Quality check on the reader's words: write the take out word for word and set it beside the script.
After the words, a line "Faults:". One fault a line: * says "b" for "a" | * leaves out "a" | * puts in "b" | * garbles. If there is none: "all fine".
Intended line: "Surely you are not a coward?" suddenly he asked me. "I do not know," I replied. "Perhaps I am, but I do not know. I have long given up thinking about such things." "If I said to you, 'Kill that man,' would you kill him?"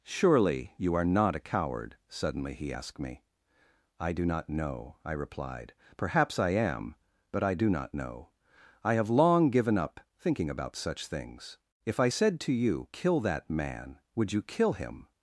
"Surely you are not a coward?" suddenly he asked me. "I do not know," I replied. "Perhaps I am, but I do not know. I have long given up thinking about such things." "If I said to you, 'Kill that man,' would you kill him?"
Faults:
all fine